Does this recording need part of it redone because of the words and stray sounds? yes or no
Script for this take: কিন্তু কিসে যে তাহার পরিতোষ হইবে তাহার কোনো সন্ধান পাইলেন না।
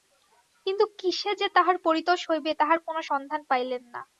no